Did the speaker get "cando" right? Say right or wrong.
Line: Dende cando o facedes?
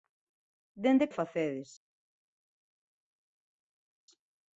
wrong